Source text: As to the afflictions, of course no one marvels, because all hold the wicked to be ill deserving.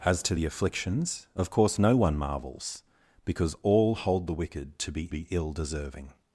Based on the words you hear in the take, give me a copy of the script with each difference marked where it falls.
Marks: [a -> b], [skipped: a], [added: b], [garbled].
As to the afflictions, of course no one marvels, because all hold the wicked to be [added: be] ill deserving.